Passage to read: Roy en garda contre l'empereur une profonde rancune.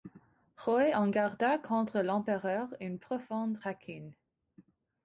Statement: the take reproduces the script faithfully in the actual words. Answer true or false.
true